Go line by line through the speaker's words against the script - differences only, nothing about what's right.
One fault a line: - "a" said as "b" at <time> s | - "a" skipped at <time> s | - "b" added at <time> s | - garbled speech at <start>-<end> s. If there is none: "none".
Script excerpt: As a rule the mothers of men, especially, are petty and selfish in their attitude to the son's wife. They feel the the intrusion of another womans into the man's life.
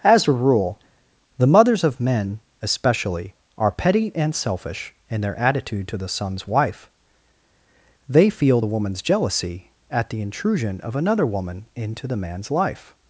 - "woman's jealousy at" added at 8.7 s
- "womans" said as "woman" at 11.3 s